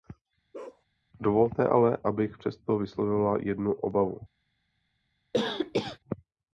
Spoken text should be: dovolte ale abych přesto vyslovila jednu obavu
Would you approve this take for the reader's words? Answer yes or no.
yes